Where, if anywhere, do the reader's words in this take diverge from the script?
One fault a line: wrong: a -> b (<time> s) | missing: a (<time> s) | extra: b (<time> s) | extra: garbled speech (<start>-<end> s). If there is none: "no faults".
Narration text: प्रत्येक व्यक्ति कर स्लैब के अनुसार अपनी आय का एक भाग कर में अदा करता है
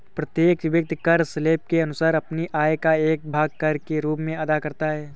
extra: के रूप (3.9 s)